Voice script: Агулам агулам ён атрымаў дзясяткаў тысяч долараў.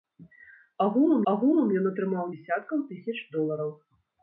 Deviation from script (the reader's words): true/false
false